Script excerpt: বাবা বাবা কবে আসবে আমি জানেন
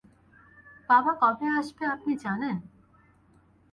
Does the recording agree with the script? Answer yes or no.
no